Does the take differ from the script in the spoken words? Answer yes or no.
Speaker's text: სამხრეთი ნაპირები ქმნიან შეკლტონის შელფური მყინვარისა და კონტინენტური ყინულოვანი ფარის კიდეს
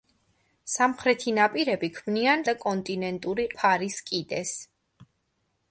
yes